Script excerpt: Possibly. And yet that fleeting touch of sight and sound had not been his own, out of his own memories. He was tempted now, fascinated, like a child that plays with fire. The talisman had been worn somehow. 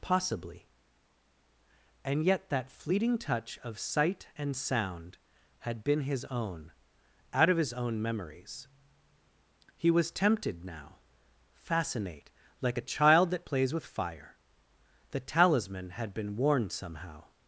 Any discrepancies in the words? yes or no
yes